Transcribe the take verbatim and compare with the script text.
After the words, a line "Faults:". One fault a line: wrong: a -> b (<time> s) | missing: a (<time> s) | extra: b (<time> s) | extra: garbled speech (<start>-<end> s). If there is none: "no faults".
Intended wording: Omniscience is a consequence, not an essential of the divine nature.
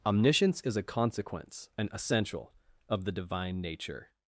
Omniscience is a consequence, an essential of the divine nature.
Faults:
missing: not (1.7 s)